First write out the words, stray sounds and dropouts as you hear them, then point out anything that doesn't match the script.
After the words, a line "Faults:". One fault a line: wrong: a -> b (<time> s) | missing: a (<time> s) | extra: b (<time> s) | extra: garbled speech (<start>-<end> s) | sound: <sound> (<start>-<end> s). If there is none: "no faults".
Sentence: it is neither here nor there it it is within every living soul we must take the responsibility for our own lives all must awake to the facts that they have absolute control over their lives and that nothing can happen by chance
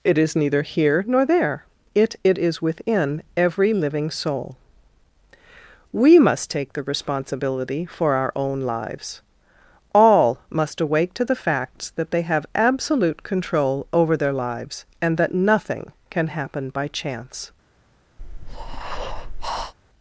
it is neither here nor there it it is within every living soul we must take the responsibility for our own lives all must awake to the facts that they have absolute control over their lives and that nothing can happen by chance
Faults:
sound: breath (18.2-19.7 s)